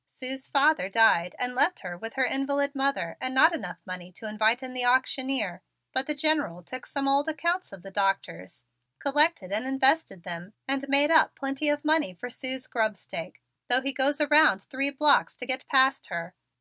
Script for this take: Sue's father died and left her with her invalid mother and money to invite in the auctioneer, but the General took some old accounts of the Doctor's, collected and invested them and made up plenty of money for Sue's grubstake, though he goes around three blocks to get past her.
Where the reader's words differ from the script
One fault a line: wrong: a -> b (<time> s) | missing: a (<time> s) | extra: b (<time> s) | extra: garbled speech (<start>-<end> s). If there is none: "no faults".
extra: not enough (3.4 s)